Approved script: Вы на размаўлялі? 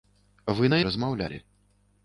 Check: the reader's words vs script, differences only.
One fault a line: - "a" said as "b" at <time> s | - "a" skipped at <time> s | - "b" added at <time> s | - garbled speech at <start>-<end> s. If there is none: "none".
none